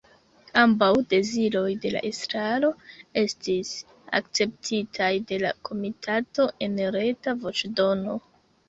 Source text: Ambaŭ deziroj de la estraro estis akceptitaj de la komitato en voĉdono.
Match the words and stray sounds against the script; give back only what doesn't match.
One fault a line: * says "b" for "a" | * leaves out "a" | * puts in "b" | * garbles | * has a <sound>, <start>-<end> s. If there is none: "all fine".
* puts in "reta"